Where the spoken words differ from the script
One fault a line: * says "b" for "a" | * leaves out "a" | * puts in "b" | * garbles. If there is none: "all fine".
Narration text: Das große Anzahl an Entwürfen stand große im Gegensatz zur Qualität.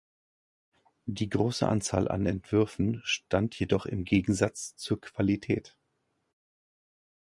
* says "Die" for "Das"
* says "jedoch" for "große"